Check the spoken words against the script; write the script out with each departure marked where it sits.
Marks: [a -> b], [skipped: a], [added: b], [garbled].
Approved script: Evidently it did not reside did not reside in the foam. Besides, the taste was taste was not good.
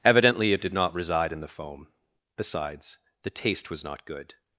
Evidently it did not reside [skipped: did not reside] in the foam. Besides, the taste was [skipped: taste was] not good.